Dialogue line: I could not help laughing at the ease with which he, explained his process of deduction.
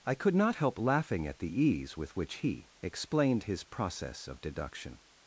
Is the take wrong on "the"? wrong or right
right